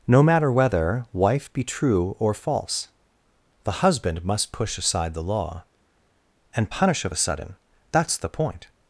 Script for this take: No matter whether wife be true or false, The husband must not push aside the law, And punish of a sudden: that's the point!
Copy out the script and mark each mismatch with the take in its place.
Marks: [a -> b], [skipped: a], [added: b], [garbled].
No matter whether wife be true or false, The husband must [skipped: not] push aside the law, And punish of a sudden: that's the point!